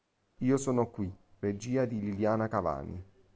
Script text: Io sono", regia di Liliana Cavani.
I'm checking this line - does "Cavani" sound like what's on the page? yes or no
yes